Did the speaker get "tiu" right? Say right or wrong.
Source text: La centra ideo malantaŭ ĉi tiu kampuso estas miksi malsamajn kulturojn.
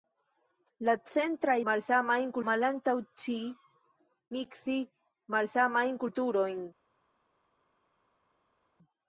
wrong